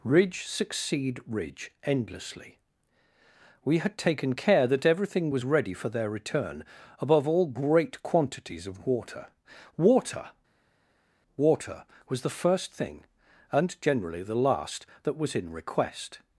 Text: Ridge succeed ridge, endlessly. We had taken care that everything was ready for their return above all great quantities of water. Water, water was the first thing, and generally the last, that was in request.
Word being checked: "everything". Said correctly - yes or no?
yes